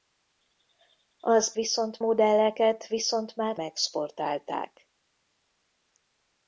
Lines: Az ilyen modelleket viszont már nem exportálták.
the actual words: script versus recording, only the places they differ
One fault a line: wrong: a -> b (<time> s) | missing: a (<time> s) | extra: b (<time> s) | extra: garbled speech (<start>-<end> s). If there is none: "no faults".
wrong: ilyen -> viszont (1.5 s)
missing: nem (3.6 s)